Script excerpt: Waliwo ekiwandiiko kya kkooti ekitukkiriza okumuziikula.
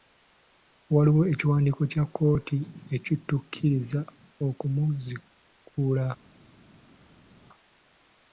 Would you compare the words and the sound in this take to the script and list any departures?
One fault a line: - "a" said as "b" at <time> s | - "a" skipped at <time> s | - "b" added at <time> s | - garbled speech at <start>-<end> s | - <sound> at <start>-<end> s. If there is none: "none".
none